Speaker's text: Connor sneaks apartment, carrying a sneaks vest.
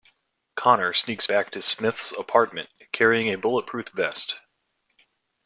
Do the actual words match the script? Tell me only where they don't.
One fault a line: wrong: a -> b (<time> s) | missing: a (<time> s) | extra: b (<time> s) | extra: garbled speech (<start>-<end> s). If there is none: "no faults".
extra: back to Smith's (1.2 s)
wrong: sneaks -> bulletproof (3.4 s)